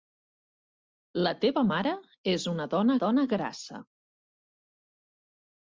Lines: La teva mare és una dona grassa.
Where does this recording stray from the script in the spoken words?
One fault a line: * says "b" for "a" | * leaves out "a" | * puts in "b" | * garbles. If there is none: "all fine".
* puts in "dona"